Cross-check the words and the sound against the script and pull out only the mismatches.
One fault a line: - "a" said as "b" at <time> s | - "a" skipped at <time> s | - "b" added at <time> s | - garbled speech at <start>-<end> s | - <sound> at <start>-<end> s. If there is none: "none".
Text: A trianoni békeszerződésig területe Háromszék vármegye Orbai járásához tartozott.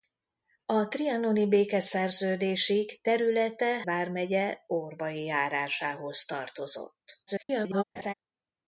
- "Háromszék" skipped at 3.8 s
- garbled speech at 7.3-7.8 s
- laugh at 8.0-8.1 s